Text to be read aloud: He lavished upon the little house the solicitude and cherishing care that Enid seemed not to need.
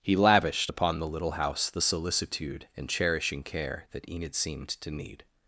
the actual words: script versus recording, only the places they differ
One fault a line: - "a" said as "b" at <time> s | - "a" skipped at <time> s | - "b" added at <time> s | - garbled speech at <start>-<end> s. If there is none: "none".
- "not" skipped at 4.7 s